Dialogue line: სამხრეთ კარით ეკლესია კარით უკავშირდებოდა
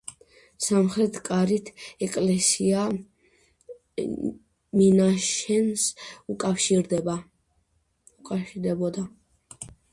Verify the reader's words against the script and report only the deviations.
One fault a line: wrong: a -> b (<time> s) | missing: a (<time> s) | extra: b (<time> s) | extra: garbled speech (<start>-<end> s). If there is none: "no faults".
wrong: კარით -> მინაშენს (4.8 s)